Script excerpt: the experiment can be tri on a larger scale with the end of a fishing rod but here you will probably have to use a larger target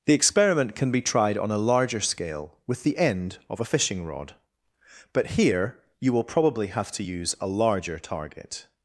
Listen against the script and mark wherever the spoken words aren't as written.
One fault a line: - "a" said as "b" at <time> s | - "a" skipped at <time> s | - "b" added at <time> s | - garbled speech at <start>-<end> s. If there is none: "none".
- "tri" said as "tried" at 1.0 s